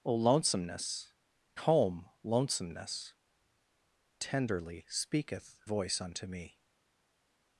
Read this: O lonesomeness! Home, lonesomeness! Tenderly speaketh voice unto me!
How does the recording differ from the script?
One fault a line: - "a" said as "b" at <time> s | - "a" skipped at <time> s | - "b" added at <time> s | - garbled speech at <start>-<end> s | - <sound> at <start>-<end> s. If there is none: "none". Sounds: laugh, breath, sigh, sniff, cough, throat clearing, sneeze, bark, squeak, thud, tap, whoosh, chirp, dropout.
none